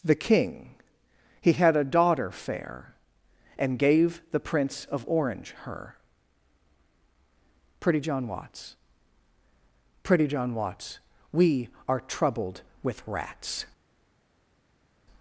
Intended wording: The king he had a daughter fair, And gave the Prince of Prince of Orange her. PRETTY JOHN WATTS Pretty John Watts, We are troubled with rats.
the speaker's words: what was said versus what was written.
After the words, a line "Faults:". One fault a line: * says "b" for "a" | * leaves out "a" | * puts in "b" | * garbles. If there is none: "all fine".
The king he had a daughter fair, And gave the Prince of Orange her. PRETTY JOHN WATTS Pretty John Watts, We are troubled with rats.
Faults:
* leaves out "Prince of"